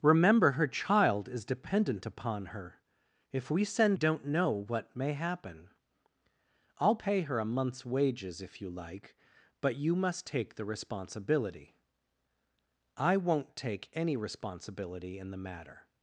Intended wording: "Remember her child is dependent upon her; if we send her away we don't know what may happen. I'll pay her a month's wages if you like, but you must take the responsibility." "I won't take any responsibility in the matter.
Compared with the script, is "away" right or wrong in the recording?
wrong